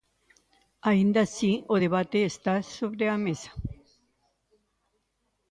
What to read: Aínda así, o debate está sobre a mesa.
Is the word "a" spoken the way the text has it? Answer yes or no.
yes